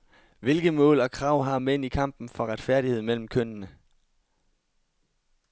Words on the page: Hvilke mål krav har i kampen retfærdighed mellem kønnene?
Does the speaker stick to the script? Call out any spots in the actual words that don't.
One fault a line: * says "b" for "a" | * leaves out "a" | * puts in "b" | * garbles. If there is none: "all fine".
* puts in "og"
* puts in "mænd"
* puts in "for"